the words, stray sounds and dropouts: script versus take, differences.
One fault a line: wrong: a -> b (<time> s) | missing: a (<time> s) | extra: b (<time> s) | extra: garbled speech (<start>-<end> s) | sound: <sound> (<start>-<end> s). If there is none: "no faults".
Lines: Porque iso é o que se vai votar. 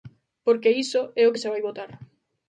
no faults